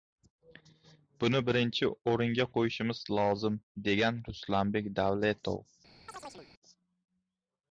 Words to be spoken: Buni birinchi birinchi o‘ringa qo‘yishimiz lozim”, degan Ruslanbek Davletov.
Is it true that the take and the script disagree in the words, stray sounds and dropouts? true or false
true